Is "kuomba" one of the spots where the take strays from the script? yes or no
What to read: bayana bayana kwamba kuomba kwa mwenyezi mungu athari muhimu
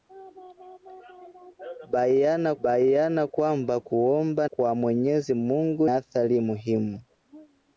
no